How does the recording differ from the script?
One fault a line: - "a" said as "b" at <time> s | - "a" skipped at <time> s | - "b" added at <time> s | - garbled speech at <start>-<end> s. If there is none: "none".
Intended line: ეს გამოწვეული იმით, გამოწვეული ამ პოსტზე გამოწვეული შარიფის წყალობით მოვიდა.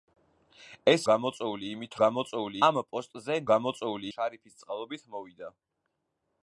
none